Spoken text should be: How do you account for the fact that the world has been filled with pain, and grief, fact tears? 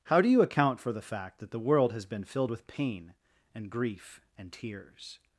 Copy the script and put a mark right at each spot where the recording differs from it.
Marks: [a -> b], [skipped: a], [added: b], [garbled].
How do you account for the fact that the world has been filled with pain, and grief, [fact -> and] tears?